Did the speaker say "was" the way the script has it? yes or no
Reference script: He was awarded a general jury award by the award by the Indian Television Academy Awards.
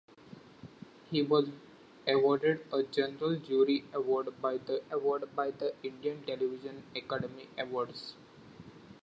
yes